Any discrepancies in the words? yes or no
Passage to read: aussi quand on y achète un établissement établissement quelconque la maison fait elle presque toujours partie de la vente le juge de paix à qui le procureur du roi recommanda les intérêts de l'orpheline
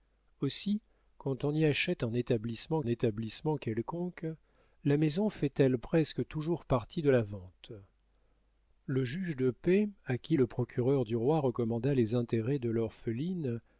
no